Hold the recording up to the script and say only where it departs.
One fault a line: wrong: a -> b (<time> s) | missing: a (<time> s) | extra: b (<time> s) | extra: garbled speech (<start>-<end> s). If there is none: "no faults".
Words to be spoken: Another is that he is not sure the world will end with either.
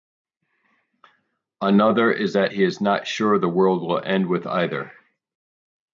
no faults